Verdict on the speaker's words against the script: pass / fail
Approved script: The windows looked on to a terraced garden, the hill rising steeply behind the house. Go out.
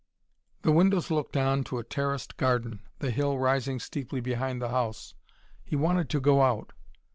fail